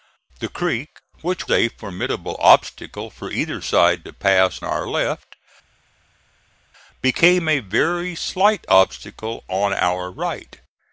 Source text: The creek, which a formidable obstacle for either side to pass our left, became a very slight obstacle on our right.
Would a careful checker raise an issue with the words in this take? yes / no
no